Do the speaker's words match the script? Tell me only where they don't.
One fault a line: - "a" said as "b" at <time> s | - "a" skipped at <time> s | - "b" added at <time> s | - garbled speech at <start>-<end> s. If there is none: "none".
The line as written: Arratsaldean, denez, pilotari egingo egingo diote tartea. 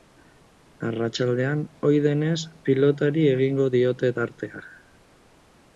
- "ohi" added at 1.9 s
- "egingo" skipped at 3.7 s